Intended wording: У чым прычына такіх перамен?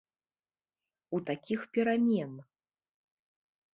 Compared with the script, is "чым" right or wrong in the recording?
wrong